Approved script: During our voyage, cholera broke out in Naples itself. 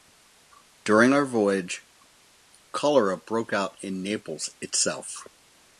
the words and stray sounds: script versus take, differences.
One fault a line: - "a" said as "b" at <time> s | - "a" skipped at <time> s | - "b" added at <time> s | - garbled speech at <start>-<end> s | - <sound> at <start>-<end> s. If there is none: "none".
none